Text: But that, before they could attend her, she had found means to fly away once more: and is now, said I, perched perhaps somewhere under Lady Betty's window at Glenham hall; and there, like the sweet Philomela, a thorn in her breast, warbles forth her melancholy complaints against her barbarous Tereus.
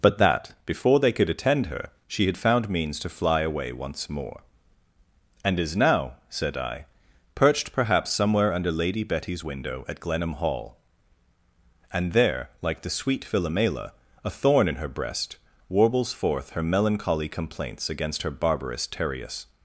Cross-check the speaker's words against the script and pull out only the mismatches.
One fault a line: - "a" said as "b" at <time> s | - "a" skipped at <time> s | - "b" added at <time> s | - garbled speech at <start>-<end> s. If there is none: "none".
none